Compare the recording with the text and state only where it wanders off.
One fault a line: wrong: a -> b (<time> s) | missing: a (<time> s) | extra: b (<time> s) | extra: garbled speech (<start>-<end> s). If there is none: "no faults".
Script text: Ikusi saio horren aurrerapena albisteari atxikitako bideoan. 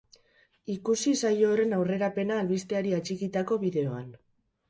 no faults